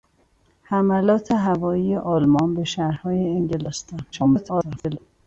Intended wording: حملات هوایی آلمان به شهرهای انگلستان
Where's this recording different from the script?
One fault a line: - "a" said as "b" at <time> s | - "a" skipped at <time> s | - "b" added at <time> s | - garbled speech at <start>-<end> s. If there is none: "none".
- garbled speech at 4.1-5.0 s